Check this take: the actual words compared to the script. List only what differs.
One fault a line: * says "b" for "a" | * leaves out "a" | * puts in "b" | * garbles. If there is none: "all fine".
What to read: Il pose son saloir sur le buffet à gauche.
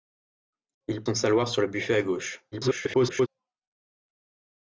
* leaves out "pose"
* garbles